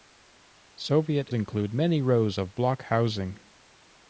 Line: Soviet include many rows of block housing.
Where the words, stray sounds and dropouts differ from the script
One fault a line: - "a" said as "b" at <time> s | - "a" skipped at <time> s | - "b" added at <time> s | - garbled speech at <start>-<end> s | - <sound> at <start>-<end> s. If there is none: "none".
none